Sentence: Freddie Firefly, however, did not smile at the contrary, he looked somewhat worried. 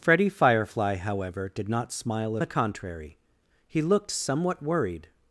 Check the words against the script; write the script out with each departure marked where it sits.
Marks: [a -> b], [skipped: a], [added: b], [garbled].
Freddie Firefly, however, did not smile at the contrary, he looked somewhat worried.